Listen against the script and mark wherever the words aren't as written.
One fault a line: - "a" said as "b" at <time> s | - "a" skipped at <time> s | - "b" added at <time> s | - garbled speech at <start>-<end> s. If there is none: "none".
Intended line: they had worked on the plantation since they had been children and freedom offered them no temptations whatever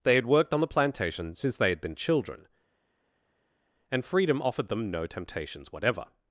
none